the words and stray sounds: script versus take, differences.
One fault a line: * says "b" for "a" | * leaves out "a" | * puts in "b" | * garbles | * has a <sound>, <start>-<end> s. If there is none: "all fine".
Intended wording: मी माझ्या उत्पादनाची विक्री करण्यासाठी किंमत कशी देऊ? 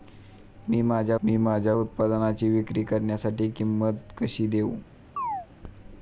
* puts in "मी माझ्या"
* has a chirp, 5.2-5.5 s